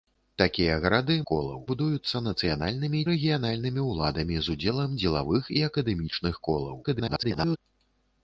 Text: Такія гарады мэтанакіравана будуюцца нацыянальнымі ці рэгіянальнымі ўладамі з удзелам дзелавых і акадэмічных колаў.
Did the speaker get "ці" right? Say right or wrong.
wrong